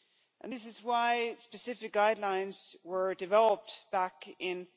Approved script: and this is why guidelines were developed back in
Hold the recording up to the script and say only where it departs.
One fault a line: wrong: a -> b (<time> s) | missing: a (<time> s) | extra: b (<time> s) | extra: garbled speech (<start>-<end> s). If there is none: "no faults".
extra: specific (1.3 s)